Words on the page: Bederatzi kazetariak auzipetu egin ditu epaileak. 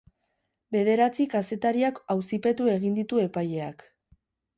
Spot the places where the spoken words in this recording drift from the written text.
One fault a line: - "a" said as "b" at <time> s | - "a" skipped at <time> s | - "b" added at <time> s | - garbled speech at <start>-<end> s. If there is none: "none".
none